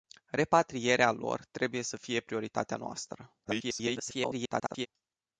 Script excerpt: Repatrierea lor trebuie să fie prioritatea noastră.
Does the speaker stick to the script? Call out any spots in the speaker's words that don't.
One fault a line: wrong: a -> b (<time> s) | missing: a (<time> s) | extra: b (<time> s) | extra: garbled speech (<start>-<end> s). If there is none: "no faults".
extra: garbled speech (3.4-4.9 s)